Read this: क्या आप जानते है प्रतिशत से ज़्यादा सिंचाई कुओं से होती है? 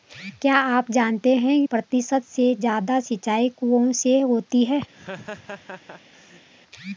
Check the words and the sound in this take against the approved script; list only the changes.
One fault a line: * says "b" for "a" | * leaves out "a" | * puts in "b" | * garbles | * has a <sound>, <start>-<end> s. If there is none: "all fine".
* has a laugh, 4.9-6.5 s